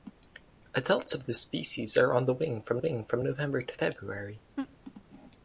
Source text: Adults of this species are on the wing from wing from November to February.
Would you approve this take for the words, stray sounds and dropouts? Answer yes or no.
no